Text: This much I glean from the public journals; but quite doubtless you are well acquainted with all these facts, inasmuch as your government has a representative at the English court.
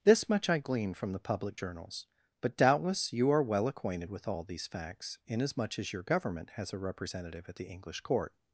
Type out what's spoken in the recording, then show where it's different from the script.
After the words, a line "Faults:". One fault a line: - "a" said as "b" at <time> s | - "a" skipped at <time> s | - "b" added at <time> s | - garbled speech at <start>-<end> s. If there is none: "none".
This much I glean from the public journals; but doubtless you are well acquainted with all these facts, inasmuch as your government has a representative at the English court.
Faults:
- "quite" skipped at 2.5 s